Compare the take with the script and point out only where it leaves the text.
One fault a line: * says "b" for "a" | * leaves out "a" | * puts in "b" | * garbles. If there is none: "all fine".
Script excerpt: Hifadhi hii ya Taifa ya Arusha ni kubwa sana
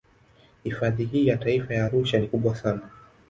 all fine